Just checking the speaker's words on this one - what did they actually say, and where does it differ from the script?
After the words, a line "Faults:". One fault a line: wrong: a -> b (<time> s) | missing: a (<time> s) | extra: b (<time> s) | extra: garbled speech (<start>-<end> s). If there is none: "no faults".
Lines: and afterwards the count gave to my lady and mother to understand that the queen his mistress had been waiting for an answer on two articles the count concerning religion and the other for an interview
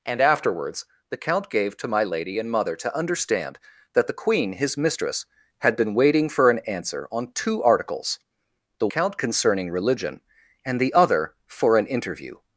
and afterwards the count gave to my lady and mother to understand that the queen his mistress had been waiting for an answer on two articles the count concerning religion and the other for an interview
Faults:
no faults